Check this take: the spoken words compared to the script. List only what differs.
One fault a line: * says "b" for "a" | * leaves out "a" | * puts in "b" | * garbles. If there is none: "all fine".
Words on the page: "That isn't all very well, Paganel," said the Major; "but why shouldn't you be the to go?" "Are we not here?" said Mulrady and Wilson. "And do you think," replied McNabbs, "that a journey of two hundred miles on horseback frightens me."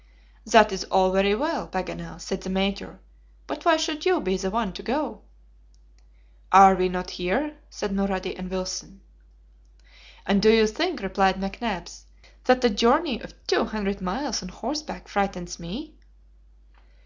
* says "is" for "isn't"
* says "should" for "shouldn't"
* puts in "one"